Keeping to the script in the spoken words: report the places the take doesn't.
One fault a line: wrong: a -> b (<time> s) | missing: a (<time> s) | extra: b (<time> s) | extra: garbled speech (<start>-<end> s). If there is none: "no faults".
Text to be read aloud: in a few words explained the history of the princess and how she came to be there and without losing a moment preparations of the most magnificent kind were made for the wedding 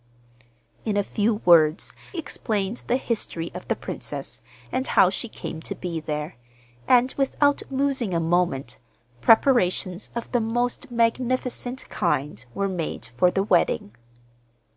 no faults